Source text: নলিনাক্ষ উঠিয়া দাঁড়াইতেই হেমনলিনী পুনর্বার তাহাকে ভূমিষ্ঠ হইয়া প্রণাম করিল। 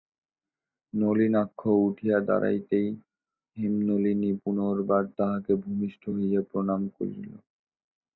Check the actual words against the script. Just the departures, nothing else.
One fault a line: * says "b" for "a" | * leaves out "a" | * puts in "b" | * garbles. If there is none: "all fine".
all fine